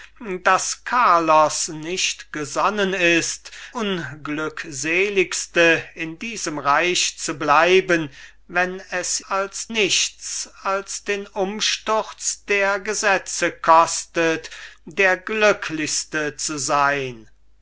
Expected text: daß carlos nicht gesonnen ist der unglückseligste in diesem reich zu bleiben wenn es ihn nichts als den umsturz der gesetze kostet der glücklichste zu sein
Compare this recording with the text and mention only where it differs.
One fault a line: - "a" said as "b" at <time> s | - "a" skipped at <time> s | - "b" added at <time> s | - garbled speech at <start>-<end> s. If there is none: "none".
- "der" skipped at 3.5 s
- "ihn" said as "als" at 9.3 s